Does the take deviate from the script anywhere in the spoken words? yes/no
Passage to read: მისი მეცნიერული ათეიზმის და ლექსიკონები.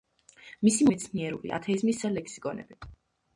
no